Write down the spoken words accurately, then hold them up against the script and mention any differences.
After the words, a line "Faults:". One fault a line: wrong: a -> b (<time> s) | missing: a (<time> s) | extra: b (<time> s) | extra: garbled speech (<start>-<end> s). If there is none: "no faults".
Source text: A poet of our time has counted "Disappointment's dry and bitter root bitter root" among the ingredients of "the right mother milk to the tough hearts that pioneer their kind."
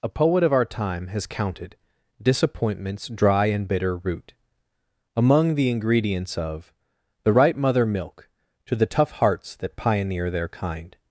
A poet of our time has counted "Disappointment's dry and bitter root" among the ingredients of "the right mother milk to the tough hearts that pioneer their kind."
Faults:
missing: bitter root (4.3 s)